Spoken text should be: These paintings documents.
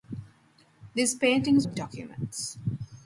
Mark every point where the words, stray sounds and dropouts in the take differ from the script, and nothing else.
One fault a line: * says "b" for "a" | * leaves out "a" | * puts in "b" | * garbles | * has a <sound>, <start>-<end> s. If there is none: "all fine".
all fine